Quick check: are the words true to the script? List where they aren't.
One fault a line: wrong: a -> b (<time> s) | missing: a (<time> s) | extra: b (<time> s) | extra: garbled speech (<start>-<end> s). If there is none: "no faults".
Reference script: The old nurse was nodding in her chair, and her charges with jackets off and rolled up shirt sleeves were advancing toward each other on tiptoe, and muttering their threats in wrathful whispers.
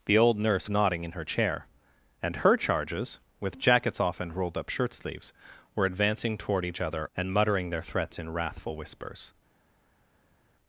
missing: was (0.7 s)
missing: on tiptoe (7.1 s)